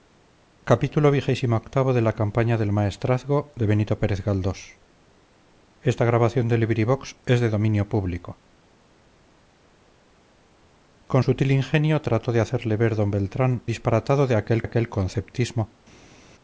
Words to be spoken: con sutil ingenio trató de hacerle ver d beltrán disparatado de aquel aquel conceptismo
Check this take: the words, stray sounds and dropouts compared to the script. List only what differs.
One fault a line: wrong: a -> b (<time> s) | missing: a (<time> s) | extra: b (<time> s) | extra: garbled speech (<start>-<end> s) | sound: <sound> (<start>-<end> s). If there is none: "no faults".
no faults